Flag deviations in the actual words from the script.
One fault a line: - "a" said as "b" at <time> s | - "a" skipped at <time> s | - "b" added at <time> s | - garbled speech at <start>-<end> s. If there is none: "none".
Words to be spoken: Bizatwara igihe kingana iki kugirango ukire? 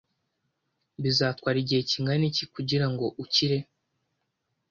none